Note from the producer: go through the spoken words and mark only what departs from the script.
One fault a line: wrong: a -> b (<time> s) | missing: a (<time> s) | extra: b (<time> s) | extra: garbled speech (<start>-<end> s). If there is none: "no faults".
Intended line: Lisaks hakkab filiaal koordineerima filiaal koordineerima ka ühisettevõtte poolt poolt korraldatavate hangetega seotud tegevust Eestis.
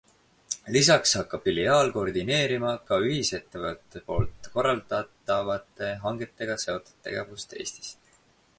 missing: filiaal koordineerima (2.7 s)
missing: poolt (4.5 s)